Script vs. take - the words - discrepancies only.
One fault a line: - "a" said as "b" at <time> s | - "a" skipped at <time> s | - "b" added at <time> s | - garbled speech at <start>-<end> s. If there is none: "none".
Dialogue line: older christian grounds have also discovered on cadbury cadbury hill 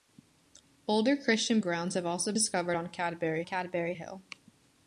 none